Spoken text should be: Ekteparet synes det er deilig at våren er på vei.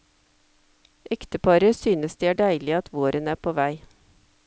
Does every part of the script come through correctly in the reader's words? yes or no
yes